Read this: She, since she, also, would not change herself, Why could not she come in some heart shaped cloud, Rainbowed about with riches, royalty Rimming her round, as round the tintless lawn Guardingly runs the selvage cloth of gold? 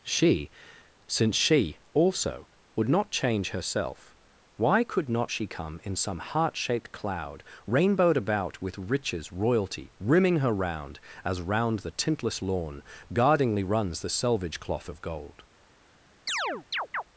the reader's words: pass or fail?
pass